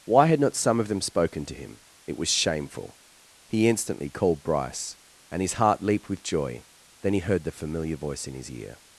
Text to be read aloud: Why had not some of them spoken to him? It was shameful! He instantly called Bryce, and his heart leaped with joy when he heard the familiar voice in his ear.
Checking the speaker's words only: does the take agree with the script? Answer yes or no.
no